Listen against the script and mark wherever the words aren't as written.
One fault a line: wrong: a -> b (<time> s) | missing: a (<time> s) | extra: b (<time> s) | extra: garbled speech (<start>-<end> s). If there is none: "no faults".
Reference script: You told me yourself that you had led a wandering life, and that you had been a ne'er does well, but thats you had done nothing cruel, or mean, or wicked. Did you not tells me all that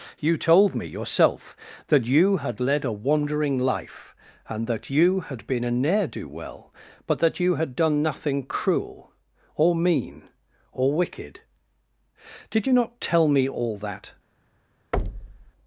wrong: does -> do (6.1 s)
wrong: thats -> that (7.2 s)
wrong: tells -> tell (13.0 s)